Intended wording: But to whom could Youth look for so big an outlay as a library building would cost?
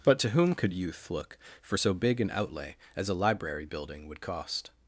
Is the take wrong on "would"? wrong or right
right